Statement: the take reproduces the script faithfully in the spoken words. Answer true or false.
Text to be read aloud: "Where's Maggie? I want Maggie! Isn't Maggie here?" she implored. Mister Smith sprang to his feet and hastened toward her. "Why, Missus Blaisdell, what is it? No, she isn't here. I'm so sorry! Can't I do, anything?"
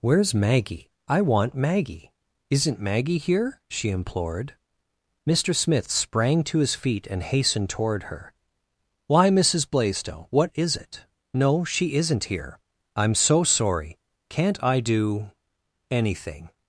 true